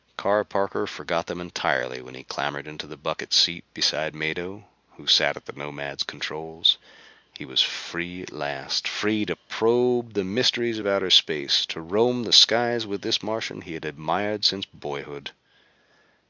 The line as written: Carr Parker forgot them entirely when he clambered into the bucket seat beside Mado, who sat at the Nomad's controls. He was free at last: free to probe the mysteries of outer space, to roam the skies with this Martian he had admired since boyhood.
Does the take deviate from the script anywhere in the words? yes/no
no